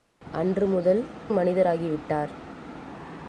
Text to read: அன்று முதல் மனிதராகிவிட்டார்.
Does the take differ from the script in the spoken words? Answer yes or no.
no